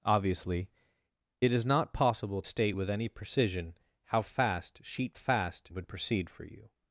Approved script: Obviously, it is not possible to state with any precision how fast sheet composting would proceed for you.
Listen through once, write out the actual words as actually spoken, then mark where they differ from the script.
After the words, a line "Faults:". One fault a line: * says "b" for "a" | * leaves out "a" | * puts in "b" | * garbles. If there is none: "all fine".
Obviously, it is not possible state with any precision how fast sheet fast would proceed for you.
Faults:
* leaves out "to"
* says "fast" for "composting"